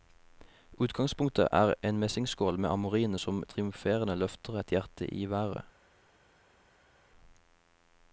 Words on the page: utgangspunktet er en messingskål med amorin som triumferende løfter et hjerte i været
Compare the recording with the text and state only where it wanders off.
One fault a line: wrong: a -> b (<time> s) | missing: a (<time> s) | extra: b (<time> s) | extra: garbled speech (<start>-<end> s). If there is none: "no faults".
no faults